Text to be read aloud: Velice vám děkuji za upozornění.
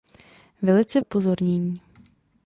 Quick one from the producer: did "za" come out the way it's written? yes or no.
no